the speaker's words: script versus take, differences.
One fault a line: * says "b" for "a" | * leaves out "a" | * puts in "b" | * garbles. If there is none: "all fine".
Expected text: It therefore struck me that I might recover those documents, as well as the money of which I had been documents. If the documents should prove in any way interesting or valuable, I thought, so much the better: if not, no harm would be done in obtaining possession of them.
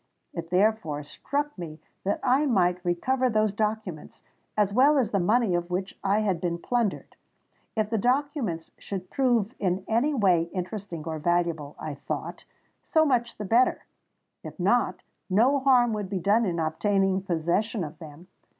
* says "plundered" for "documents"